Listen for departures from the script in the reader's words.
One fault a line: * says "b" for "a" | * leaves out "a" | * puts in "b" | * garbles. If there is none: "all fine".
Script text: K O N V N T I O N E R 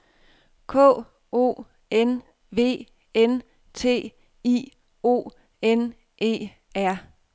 all fine